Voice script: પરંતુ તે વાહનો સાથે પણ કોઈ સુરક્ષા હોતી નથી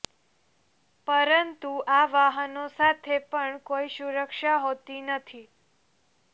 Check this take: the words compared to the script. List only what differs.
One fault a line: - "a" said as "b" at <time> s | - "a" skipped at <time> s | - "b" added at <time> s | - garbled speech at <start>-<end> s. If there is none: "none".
- "તે" said as "આ" at 1.9 s